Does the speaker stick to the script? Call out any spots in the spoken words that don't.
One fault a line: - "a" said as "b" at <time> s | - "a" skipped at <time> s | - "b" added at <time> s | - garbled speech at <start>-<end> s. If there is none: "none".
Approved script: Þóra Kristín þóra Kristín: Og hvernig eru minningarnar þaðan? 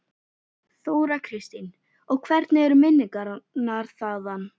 - "þóra Kristín" skipped at 1.7 s